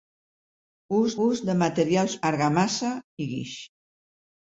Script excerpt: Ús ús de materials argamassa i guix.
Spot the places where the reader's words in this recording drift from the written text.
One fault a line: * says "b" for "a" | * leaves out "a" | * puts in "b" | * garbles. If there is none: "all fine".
all fine